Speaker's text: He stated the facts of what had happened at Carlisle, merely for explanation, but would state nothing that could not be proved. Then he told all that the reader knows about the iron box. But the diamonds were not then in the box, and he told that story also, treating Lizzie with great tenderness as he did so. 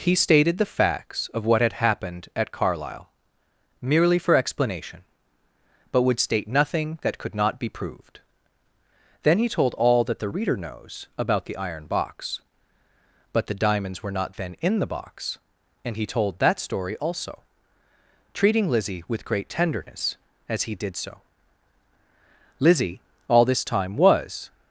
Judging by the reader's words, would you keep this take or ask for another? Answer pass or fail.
fail